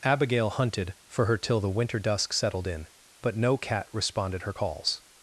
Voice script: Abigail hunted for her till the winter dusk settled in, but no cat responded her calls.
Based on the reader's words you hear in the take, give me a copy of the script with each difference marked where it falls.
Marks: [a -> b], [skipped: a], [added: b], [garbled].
Abigail hunted for her till the winter dusk settled in, but no cat responded her calls.